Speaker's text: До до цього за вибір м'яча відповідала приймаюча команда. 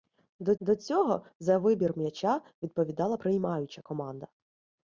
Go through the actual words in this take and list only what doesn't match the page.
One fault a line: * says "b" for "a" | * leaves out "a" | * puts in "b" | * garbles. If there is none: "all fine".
all fine